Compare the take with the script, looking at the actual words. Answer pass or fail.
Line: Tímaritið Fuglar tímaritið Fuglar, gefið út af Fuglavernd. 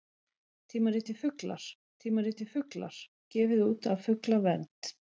pass